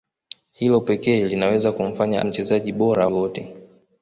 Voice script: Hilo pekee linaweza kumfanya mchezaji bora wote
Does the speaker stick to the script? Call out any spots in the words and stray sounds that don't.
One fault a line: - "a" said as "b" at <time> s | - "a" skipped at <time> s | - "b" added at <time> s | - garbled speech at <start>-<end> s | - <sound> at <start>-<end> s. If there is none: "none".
none